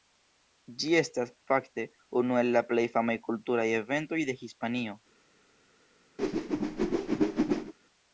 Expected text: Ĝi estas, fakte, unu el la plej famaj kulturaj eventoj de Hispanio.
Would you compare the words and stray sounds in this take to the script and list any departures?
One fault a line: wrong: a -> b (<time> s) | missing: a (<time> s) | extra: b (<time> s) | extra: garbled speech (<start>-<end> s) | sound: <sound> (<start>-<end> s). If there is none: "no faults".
sound: whoosh (6.2-7.7 s)